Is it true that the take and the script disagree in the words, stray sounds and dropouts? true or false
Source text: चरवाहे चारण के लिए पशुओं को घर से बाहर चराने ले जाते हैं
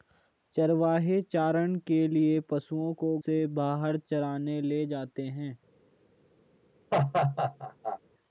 true